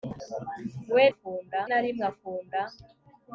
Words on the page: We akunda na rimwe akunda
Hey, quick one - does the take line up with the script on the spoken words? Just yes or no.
yes